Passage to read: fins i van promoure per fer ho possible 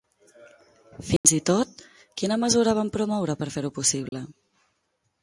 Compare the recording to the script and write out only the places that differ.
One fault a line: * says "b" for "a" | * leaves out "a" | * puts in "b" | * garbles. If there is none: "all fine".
* puts in "tot quina mesura"